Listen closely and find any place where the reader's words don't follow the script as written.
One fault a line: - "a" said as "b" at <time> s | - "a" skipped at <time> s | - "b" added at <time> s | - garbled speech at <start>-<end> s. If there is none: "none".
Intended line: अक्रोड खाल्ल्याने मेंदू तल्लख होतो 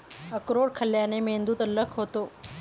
none